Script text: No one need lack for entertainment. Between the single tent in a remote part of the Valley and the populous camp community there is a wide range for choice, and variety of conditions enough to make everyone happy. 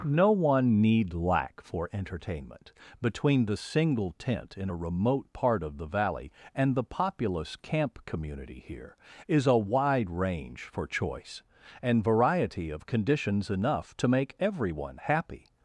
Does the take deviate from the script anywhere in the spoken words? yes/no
yes